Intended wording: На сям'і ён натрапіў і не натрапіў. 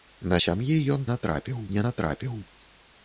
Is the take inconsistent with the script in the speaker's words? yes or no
no